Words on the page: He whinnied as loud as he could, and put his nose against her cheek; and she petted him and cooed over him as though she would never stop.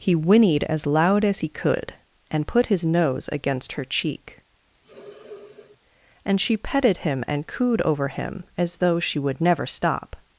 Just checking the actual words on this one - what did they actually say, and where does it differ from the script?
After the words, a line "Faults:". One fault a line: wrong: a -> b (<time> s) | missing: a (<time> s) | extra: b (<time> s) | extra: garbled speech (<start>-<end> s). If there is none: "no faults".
He whinnied as loud as he could, and put his nose against her cheek; and she petted him and cooed over him as though she would never stop.
Faults:
no faults